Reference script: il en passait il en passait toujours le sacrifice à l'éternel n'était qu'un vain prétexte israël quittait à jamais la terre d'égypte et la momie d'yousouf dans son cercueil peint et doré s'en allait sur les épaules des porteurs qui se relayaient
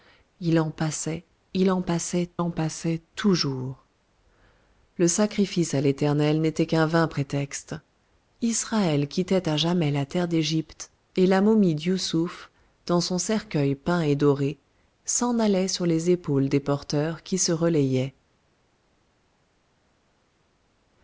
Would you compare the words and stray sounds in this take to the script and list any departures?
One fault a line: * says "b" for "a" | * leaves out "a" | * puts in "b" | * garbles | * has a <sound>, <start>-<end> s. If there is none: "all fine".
* puts in "en passait"